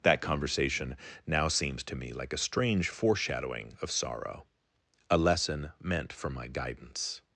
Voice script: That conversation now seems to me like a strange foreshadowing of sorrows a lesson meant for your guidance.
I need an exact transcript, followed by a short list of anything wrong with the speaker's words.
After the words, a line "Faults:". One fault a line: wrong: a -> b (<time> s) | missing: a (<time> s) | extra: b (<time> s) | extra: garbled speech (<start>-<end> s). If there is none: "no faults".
That conversation now seems to me like a strange foreshadowing of sorrow a lesson meant for my guidance.
Faults:
wrong: sorrows -> sorrow (3.9 s)
wrong: your -> my (6.3 s)